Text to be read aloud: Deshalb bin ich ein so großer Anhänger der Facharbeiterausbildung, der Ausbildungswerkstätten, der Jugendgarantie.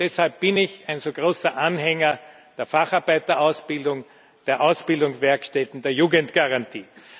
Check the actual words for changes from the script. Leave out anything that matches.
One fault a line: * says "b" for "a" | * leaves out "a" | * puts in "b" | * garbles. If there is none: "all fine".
all fine